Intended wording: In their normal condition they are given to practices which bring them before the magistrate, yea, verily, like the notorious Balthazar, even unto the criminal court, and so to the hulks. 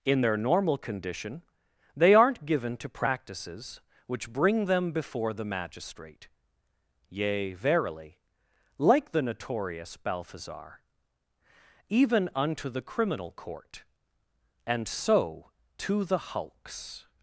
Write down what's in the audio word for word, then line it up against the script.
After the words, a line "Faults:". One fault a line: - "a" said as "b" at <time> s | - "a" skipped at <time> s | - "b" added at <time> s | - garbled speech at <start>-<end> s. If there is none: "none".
In their normal condition they aren't given to practices which bring them before the magistrate, yea, verily, like the notorious Balthazar, even unto the criminal court, and so to the hulks.
Faults:
- "are" said as "aren't" at 2.1 s